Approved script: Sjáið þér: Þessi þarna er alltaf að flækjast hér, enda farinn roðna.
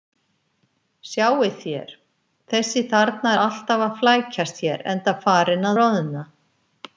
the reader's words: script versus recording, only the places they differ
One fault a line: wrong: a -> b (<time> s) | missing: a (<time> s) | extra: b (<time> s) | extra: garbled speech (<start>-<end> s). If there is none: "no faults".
no faults